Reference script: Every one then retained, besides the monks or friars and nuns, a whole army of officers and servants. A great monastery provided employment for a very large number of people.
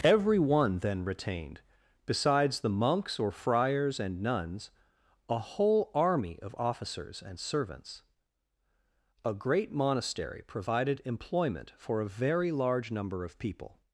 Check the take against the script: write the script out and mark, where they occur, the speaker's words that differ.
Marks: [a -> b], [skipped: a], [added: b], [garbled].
Every one then retained, besides the monks or friars and nuns, a whole army of officers and servants. A great monastery provided employment for a very large number of people.